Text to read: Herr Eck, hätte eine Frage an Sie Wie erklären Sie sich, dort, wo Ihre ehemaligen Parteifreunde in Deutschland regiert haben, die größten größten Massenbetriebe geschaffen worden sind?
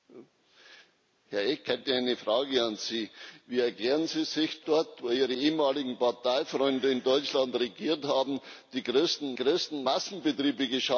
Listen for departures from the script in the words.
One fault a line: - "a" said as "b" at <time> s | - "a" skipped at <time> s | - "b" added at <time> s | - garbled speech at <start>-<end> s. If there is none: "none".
none